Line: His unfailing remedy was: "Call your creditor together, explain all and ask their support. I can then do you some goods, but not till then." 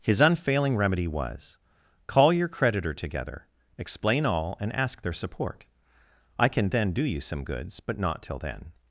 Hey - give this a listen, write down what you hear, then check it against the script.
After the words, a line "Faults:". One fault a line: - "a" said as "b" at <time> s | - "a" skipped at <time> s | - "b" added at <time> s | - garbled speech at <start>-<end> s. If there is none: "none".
His unfailing remedy was: "Call your creditor together, explain all and ask their support. I can then do you some goods, but not till then."
Faults:
none